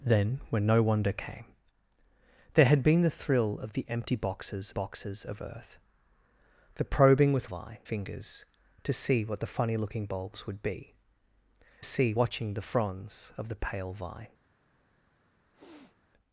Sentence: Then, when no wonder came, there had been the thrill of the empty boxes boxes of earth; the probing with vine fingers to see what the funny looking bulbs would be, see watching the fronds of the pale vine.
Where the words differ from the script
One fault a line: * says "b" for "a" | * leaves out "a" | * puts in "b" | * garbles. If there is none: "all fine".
all fine